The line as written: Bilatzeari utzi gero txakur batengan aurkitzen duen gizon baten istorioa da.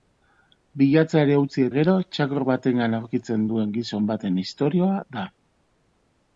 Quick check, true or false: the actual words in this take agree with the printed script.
true